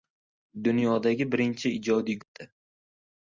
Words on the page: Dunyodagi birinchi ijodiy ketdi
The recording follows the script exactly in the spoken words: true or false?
true